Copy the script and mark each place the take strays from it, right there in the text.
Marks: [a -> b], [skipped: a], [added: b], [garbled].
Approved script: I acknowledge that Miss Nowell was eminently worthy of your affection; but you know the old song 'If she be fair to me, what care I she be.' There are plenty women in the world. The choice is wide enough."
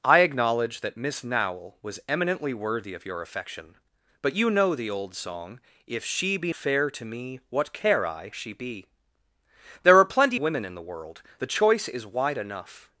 I acknowledge that Miss Nowell was eminently worthy of your affection; but you know the old song 'If she be fair to me, what care I she be.' There are plenty women in the world. The choice is wide enough."